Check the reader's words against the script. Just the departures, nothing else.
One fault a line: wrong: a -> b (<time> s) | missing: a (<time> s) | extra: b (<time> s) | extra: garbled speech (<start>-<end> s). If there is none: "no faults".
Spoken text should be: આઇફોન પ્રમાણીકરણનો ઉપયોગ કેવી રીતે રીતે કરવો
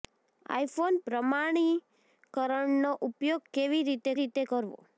no faults